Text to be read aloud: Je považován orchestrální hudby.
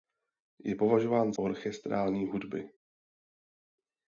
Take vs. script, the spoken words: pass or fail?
pass